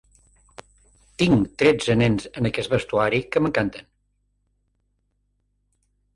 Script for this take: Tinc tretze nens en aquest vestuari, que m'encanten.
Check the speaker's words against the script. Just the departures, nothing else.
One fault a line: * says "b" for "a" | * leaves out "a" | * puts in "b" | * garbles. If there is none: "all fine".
all fine